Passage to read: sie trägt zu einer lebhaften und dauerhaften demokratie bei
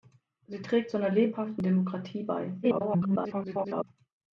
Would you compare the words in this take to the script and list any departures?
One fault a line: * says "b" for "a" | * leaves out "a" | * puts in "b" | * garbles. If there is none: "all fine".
* leaves out "und dauerhaften"
* garbles